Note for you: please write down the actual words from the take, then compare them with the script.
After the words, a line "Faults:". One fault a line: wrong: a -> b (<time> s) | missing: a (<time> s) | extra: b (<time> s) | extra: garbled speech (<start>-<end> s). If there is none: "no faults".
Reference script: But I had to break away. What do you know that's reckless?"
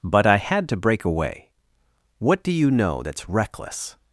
But I had to break away. What do you know that's reckless?"
Faults:
no faults